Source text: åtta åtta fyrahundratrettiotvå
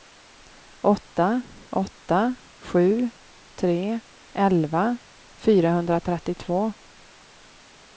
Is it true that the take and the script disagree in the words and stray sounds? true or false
true